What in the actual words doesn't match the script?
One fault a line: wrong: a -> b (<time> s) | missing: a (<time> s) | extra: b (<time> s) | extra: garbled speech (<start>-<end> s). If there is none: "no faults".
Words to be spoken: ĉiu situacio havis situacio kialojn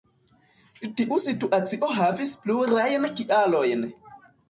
wrong: ĉiu -> tiu (1.0 s)
wrong: situacio -> plurajn (2.5 s)